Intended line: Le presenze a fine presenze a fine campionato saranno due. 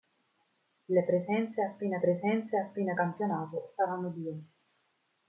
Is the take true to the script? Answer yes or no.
yes